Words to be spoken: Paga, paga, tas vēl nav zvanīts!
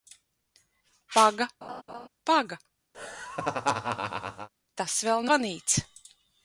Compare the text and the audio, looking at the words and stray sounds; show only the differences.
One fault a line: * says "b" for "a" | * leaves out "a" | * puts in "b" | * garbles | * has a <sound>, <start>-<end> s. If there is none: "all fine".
* has a laugh, 1.6-2.1 s
* has a laugh, 2.9-4.5 s
* leaves out "nav"